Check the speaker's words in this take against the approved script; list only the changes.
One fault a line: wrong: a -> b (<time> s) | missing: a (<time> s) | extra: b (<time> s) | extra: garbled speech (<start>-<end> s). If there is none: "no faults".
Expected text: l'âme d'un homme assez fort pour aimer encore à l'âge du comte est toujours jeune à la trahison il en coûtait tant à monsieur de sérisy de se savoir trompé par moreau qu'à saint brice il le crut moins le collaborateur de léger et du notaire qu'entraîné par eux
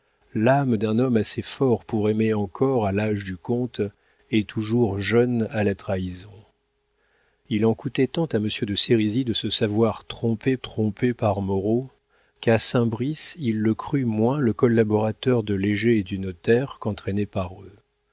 extra: trompé (10.6 s)